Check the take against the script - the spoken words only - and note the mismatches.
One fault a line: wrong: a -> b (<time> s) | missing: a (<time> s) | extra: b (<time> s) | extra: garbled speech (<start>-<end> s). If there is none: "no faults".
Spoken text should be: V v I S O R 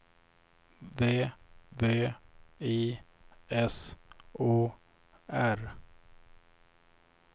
no faults